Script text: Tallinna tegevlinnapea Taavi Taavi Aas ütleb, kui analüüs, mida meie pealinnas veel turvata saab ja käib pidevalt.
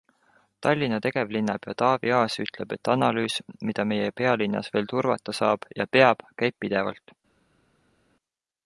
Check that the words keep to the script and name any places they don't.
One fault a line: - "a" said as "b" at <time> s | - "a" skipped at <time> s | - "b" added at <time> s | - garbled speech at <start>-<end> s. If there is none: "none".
- "Taavi" skipped at 2.1 s
- "kui" said as "et" at 2.8 s
- "peab" added at 6.0 s